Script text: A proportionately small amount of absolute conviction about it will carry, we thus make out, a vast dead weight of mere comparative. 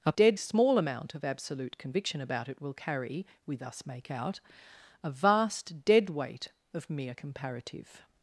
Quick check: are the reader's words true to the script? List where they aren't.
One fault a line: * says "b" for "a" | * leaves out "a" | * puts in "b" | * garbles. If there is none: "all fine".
* says "dead" for "proportionately"